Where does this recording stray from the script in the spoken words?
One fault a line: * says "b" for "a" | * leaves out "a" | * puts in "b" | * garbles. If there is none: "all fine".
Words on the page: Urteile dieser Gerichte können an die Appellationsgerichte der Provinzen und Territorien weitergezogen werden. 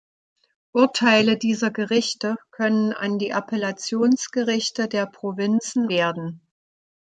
* leaves out "und Territorien weitergezogen"